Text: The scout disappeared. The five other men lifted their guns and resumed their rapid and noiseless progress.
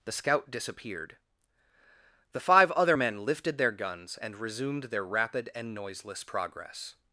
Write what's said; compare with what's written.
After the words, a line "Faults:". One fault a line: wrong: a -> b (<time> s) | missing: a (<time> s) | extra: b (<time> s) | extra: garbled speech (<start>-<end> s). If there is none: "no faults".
The scout disappeared. The five other men lifted their guns and resumed their rapid and noiseless progress.
Faults:
no faults